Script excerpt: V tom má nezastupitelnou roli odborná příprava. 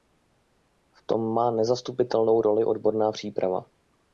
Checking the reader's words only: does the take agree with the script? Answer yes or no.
yes